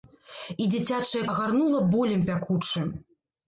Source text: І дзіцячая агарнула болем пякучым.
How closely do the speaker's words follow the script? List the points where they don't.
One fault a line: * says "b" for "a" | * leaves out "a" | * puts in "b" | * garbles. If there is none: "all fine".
all fine